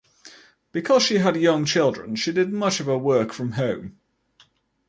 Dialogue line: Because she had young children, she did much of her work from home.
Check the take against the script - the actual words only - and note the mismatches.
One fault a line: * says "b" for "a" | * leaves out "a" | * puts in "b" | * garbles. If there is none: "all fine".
all fine